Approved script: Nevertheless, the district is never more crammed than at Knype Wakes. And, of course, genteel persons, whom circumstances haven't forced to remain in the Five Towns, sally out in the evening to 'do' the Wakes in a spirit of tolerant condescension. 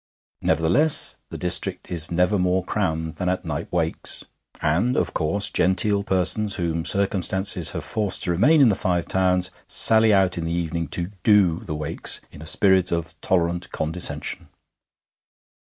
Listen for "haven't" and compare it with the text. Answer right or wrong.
wrong